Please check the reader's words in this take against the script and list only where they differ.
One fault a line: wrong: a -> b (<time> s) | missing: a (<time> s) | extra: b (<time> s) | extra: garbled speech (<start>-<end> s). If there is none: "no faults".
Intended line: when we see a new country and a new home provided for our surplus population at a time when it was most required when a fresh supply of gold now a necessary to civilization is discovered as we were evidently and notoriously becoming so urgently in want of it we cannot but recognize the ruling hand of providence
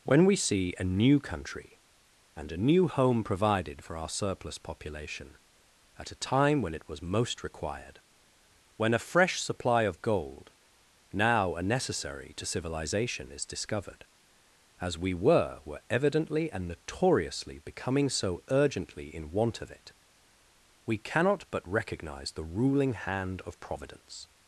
extra: were (15.6 s)